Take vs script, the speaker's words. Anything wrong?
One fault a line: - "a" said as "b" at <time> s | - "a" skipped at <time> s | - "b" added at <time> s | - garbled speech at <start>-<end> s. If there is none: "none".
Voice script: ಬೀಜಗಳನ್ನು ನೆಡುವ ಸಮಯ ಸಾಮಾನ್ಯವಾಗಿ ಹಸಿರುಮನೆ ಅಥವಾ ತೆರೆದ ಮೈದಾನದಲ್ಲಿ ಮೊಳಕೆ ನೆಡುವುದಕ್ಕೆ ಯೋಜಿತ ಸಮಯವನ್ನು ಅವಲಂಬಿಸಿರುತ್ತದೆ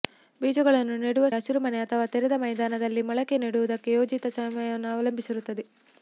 - "ಸಮಯ ಸಾಮಾನ್ಯವಾಗಿ" skipped at 1.2 s